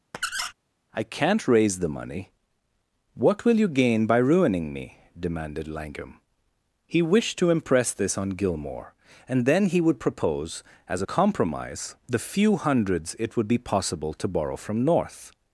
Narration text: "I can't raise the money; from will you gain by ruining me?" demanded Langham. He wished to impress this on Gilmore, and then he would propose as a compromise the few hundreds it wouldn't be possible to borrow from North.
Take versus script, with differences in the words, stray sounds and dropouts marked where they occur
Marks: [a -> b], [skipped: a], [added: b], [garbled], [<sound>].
[squeak] "I can't raise the money; [from -> what] will you gain by ruining me?" demanded Langham. He wished to impress this on Gilmore, and then he would propose as a compromise the few hundreds it [wouldn't -> would] be possible to borrow from North.